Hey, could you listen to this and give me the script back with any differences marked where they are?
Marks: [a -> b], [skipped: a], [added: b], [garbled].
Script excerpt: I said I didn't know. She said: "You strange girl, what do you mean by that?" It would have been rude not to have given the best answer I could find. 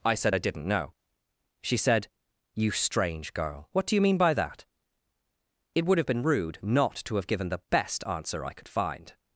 I said I didn't know. She said: "You strange girl, what do you mean by that?" It would have been rude not to have given the best answer I could find.